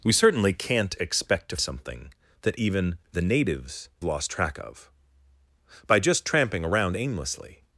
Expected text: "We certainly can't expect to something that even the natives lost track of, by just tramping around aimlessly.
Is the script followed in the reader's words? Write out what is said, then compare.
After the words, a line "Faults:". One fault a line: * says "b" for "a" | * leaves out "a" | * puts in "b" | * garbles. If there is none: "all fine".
"We certainly can't expect to something that even the natives lost track of, by just tramping around aimlessly.
Faults:
all fine